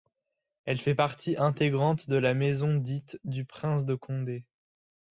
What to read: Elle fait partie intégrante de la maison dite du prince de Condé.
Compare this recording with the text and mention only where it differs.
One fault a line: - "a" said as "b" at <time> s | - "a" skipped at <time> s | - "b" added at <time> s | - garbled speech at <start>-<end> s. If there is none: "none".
none